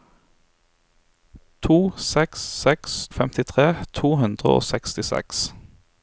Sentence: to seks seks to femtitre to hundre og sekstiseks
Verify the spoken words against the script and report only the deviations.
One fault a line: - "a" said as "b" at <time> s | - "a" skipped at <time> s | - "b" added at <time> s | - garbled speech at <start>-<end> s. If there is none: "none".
- "to" skipped at 3.1 s